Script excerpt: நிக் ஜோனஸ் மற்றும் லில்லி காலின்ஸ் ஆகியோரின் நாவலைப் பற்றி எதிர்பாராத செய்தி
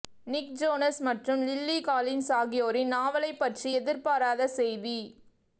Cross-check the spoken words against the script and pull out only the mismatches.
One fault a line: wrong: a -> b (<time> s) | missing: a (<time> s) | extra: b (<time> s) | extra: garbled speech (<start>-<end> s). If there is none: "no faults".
no faults